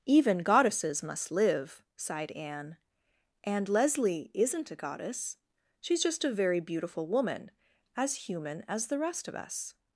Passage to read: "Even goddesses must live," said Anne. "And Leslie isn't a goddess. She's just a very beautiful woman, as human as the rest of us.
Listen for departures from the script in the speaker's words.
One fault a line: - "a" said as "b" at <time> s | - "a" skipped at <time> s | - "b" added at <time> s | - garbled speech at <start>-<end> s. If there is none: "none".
- "said" said as "sighed" at 1.9 s